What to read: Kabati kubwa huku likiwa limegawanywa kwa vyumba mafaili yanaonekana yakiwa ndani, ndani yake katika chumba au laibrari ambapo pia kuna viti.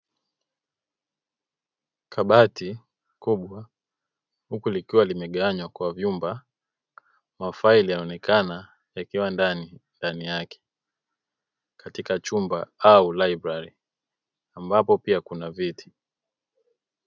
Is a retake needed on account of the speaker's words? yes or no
no